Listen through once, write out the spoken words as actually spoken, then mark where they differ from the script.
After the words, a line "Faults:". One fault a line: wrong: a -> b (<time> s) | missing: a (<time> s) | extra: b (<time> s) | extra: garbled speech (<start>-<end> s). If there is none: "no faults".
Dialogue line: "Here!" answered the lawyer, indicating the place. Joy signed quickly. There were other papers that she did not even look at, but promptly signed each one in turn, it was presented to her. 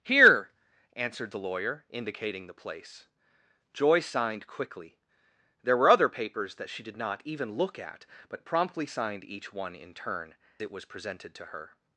"Here!" answered the lawyer, indicating the place. Joy signed quickly. There were other papers that she did not even look at, but promptly signed each one in turn, it was presented to her.
Faults:
no faults